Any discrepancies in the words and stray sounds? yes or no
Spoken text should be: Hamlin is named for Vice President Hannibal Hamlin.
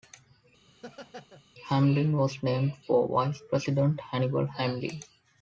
yes